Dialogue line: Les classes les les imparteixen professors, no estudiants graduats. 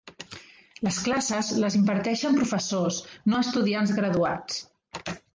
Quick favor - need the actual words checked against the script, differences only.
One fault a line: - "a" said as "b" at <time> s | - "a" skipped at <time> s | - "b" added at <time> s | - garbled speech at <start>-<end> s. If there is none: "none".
- "les" skipped at 1.8 s